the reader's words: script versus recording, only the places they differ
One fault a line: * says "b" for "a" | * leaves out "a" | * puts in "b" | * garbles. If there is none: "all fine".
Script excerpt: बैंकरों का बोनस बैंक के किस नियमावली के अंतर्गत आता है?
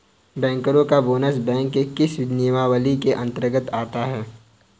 all fine